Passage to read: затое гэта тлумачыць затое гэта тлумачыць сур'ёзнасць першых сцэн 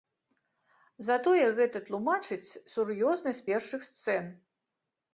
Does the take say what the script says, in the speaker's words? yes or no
no